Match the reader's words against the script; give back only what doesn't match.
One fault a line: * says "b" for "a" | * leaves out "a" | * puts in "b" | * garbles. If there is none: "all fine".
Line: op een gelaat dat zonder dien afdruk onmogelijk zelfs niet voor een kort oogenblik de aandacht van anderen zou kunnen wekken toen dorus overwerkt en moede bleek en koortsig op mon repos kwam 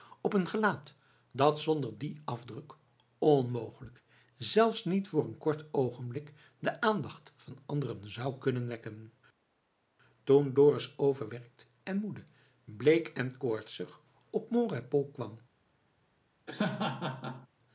all fine